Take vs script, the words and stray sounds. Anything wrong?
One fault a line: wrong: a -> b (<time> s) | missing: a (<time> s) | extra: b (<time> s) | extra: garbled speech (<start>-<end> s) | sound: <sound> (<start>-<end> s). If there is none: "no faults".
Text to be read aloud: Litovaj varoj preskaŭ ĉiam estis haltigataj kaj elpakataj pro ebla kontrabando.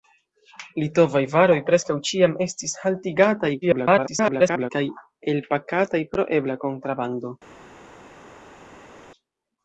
extra: garbled speech (3.6-4.7 s)